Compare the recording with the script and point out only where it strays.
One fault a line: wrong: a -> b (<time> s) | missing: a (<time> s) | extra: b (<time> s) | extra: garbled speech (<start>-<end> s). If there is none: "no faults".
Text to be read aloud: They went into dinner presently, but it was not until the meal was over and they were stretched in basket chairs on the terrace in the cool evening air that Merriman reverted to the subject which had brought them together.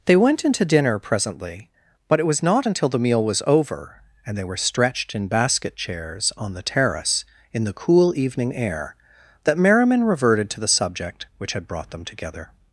no faults